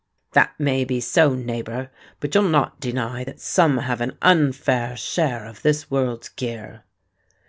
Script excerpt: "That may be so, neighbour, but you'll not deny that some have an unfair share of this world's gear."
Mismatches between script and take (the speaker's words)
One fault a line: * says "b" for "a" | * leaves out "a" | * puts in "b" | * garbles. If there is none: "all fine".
all fine